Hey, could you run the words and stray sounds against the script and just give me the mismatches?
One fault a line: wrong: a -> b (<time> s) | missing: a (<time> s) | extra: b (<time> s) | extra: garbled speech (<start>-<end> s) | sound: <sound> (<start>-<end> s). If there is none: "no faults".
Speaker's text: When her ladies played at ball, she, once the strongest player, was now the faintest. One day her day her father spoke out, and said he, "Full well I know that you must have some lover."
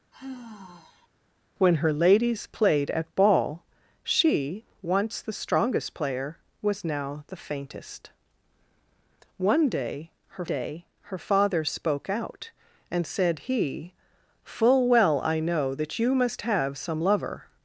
sound: sigh (0.1-1.1 s)